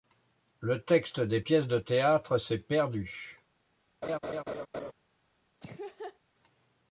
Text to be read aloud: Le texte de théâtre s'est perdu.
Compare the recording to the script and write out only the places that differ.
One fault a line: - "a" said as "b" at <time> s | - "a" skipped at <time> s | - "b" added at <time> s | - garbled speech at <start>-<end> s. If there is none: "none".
- "des pièces" added at 1.2 s